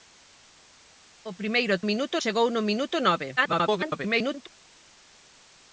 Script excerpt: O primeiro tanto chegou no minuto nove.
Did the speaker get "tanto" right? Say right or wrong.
wrong